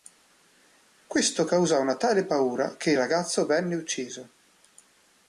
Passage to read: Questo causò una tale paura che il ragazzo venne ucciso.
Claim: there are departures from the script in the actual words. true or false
false